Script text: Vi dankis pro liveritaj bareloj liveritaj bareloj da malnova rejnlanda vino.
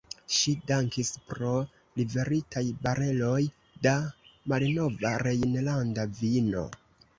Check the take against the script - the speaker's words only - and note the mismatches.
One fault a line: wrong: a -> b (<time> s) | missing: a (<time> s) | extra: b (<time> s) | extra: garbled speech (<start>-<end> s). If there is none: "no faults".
wrong: Vi -> Ŝi (0.3 s)
missing: liveritaj bareloj (3.4 s)